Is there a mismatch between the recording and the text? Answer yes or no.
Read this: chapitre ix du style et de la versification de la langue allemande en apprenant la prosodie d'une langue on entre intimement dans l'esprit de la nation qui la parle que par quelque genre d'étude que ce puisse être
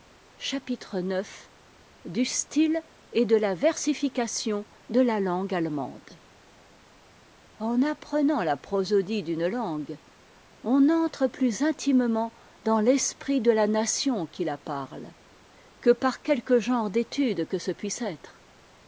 yes